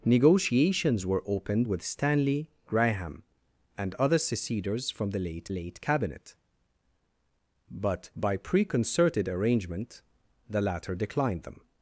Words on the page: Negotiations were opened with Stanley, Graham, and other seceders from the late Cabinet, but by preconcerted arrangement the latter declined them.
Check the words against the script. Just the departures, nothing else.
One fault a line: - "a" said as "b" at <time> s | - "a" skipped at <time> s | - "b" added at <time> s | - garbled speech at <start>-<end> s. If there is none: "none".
- "late" added at 5.5 s